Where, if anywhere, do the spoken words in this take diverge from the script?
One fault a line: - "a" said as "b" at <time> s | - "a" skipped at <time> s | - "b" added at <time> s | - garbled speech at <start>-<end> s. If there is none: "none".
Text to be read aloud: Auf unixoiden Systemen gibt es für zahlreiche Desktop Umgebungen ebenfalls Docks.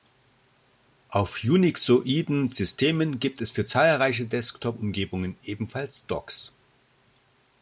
none